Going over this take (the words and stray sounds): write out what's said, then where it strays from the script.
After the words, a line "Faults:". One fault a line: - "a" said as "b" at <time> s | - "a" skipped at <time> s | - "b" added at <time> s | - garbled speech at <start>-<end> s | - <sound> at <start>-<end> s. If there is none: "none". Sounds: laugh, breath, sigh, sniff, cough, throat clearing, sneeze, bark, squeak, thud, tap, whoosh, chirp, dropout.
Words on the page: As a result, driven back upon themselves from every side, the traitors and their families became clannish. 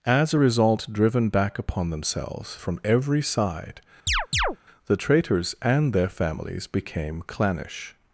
As a result, driven back upon themselves from every side, the traitors and their families became clannish.
Faults:
- chirp at 4.1-4.6 s